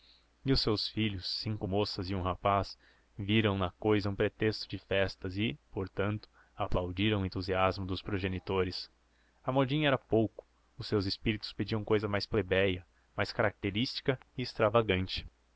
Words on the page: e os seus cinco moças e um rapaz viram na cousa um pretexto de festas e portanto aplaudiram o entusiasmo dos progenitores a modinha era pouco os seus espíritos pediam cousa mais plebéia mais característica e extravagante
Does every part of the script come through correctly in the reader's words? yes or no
no